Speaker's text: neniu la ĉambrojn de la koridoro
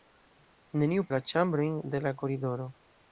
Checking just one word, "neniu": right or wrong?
right